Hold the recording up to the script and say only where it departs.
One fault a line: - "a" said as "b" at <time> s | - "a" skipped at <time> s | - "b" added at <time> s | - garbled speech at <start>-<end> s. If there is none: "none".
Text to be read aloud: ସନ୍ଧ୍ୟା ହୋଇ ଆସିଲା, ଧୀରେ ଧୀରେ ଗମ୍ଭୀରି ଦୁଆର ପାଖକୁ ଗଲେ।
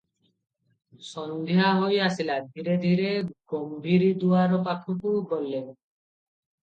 none